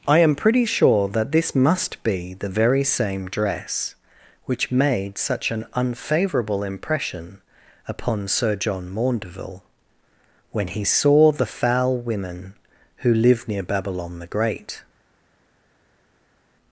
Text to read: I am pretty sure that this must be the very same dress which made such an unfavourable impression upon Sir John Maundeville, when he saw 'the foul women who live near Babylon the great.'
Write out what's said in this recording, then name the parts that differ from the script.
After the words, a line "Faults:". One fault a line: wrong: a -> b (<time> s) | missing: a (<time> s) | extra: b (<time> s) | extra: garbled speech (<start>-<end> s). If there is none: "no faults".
I am pretty sure that this must be the very same dress which made such an unfavourable impression upon Sir John Maundeville, when he saw 'the foul women who live near Babylon the great.'
Faults:
no faults